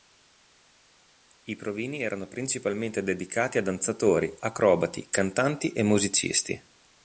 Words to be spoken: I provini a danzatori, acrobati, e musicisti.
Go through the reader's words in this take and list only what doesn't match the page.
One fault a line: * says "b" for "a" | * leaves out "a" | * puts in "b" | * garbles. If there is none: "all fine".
* puts in "erano principalmente dedicati"
* puts in "cantanti"